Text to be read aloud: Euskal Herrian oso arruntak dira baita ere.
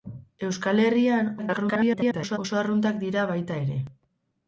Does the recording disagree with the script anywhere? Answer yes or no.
yes